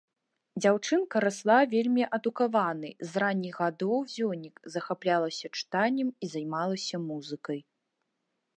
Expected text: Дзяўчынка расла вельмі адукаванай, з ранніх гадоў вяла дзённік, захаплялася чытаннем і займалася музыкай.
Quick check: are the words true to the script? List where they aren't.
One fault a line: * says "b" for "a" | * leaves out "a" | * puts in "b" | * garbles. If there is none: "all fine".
* leaves out "вяла"